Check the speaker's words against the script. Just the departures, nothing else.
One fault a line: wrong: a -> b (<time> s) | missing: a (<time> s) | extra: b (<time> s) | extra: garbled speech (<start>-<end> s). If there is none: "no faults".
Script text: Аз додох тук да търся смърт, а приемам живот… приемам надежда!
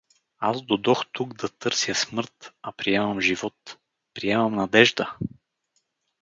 no faults